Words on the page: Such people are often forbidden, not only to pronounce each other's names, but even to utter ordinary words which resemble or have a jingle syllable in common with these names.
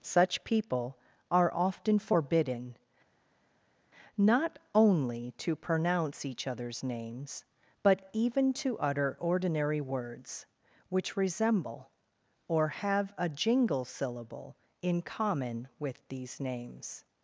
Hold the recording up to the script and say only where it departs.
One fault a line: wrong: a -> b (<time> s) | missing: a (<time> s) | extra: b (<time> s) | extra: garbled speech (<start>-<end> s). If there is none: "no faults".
no faults